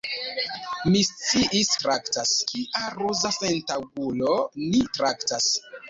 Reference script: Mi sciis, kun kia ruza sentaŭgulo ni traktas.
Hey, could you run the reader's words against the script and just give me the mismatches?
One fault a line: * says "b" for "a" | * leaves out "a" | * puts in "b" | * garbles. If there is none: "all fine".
* says "traktas" for "kun"